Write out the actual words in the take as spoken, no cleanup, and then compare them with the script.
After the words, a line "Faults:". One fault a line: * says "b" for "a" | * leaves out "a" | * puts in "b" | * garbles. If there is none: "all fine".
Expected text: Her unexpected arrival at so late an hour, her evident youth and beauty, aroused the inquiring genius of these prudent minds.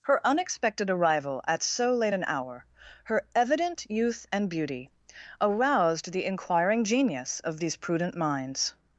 Her unexpected arrival at so late an hour, her evident youth and beauty, aroused the inquiring genius of these prudent minds.
Faults:
all fine